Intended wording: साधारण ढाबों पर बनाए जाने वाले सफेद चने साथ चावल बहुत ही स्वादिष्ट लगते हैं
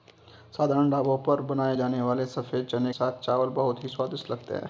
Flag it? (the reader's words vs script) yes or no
no